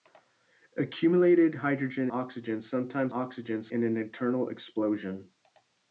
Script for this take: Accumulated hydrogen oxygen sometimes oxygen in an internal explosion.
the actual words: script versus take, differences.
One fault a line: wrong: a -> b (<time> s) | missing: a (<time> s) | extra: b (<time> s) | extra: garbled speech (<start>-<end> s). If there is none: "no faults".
no faults